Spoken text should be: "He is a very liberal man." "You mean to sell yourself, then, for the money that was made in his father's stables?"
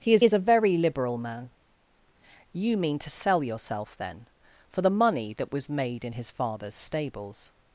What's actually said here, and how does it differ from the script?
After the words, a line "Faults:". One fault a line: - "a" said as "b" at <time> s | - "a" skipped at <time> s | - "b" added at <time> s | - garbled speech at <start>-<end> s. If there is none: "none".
"He is is a very liberal man." "You mean to sell yourself, then, for the money that was made in his father's stables?"
Faults:
- "is" added at 0.2 s